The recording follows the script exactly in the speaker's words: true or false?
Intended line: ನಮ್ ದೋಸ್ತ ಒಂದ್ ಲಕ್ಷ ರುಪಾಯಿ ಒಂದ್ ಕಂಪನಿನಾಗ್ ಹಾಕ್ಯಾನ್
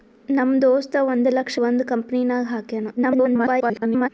false